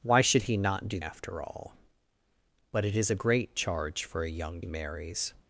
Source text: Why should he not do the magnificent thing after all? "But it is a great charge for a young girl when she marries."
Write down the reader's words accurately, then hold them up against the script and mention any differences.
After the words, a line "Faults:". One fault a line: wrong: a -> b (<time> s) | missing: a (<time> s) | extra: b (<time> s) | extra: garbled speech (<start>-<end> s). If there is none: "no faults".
Why should he not do after all? "But it is a great charge for a young marries."
Faults:
missing: the magnificent thing (1.0 s)
missing: girl when she (4.6 s)